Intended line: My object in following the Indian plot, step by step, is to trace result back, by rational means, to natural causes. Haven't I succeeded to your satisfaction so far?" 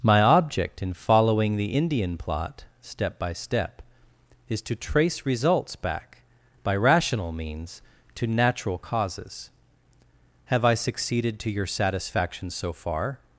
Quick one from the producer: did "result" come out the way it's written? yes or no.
no